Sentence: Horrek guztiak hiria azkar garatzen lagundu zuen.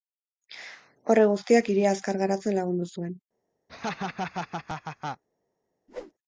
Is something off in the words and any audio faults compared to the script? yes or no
yes